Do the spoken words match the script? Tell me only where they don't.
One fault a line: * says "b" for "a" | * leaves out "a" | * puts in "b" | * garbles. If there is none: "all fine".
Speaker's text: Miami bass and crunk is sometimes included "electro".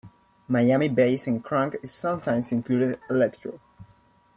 all fine